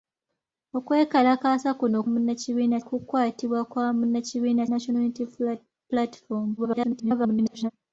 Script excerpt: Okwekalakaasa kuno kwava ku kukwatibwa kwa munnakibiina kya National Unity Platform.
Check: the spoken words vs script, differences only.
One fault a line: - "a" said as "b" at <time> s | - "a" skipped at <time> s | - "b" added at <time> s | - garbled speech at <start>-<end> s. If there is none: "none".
- "kwava" said as "munnakibiina" at 2.1 s
- "kya" skipped at 4.6 s
- garbled speech at 6.6-7.7 s